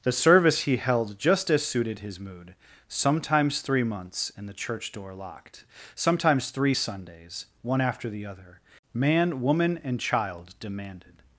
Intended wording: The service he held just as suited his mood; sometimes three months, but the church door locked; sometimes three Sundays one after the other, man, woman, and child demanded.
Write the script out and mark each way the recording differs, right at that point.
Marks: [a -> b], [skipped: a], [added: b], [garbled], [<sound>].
The service he held just as suited his mood; sometimes three months, [but -> and] the church door locked; sometimes three Sundays one after the other, man, woman, and child demanded.